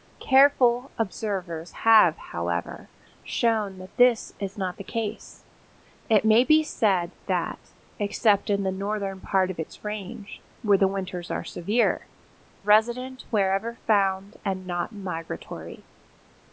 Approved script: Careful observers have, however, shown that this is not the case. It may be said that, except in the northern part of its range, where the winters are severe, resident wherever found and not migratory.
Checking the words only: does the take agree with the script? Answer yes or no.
yes